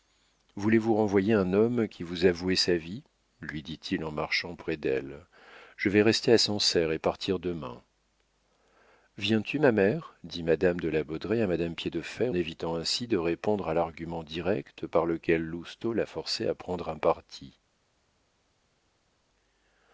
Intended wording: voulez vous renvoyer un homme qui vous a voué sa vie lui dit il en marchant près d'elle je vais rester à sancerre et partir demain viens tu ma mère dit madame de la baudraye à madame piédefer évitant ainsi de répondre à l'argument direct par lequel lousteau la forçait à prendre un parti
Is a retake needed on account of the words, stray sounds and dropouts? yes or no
no